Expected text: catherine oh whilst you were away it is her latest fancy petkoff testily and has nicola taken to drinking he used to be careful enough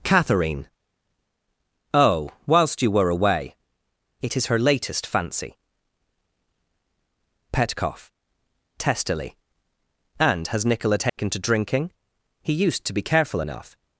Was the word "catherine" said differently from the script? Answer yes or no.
no